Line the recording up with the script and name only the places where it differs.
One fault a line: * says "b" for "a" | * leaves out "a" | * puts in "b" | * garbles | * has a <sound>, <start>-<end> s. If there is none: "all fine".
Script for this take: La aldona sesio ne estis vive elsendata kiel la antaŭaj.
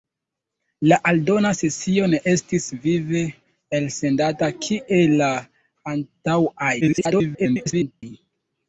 * garbles